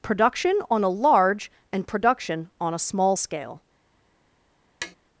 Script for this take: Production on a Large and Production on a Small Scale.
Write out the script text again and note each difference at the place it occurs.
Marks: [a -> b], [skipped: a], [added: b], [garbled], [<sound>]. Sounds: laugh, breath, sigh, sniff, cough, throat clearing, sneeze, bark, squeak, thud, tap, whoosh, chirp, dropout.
Production on a Large and Production on a Small Scale. [tap]